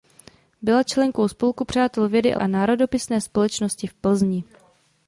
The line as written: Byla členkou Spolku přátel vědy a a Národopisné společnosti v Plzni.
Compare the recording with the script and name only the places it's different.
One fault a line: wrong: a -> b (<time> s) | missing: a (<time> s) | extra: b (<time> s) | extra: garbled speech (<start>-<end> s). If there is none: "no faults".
no faults